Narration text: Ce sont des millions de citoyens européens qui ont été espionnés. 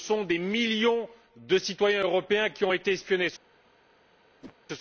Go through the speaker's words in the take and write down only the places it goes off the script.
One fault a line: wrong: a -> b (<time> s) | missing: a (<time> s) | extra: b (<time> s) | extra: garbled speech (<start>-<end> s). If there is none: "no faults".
no faults